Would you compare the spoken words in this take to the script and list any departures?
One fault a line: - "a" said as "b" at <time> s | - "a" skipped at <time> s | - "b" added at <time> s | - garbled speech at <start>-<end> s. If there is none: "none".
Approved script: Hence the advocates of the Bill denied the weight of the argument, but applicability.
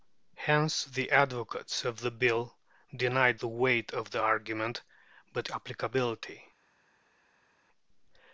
none